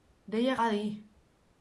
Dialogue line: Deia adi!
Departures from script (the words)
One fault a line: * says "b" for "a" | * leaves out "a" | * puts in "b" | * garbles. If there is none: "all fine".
all fine